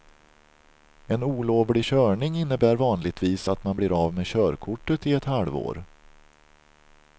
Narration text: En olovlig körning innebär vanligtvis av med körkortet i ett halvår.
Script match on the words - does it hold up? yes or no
no